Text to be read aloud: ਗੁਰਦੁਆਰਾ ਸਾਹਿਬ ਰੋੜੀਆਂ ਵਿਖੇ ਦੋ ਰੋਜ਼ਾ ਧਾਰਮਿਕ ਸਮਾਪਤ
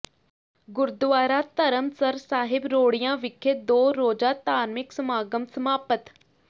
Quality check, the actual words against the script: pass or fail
fail